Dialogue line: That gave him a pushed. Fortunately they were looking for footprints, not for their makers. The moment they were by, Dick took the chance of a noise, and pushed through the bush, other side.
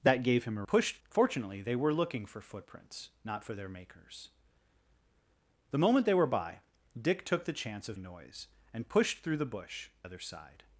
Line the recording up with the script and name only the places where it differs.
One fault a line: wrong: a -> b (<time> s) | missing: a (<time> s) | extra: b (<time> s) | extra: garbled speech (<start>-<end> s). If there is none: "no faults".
no faults